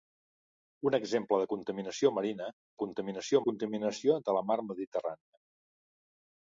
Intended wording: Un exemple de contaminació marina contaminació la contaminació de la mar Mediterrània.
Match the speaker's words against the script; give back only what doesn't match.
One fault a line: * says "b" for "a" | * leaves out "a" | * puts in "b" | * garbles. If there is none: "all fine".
all fine